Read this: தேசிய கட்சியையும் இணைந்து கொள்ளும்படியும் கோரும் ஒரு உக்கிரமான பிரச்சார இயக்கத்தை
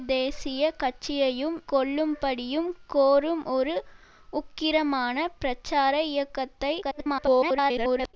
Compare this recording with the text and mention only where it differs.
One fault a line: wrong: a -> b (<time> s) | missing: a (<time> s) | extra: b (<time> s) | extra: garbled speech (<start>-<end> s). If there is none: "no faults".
missing: இணைந்து (1.6 s)
extra: garbled speech (6.8-8.1 s)